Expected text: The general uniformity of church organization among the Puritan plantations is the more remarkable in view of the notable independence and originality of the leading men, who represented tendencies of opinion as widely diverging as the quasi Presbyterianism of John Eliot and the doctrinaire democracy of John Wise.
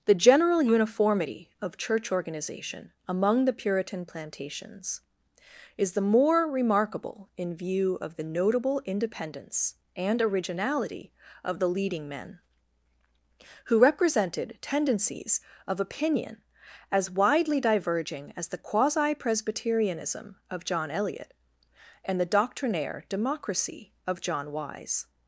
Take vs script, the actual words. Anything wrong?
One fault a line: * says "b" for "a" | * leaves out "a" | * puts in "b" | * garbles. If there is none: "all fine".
all fine